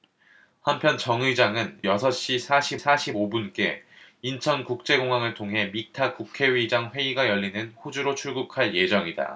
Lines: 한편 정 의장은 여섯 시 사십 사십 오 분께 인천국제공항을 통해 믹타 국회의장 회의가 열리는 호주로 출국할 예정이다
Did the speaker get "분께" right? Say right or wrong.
right